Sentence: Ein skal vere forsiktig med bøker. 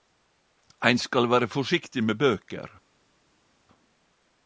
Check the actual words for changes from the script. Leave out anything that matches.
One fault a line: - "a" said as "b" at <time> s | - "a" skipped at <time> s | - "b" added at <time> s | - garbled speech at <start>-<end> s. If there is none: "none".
none